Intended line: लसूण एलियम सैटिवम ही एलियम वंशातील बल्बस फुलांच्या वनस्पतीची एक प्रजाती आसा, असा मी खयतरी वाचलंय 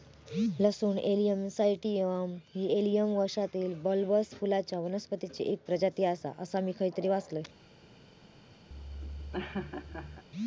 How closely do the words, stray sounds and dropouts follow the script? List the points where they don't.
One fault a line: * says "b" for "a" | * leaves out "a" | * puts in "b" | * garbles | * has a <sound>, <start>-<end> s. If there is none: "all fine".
* has a laugh, 8.7-10.2 s